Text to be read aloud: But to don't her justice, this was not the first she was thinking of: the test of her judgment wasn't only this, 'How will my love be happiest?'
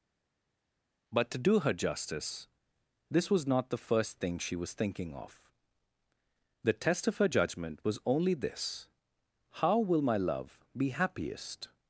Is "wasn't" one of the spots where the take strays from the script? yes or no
yes